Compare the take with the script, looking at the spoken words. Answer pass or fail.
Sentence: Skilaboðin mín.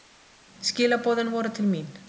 fail